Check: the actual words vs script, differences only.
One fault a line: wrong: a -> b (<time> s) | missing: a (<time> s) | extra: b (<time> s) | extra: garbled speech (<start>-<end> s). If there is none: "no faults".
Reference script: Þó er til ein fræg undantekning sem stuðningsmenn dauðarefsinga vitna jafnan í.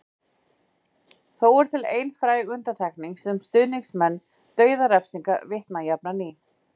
no faults